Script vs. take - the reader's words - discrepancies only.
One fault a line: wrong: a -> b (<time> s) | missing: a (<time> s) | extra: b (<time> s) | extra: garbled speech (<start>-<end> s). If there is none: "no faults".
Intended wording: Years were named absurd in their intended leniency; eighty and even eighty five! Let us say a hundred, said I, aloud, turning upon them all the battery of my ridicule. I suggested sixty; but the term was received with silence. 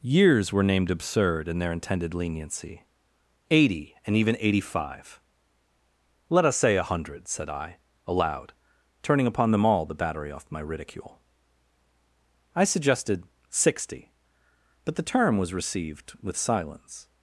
wrong: of -> off (10.3 s)